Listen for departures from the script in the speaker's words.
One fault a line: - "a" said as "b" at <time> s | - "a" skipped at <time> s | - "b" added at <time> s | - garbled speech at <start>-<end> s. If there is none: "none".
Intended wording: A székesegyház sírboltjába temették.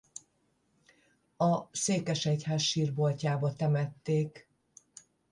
none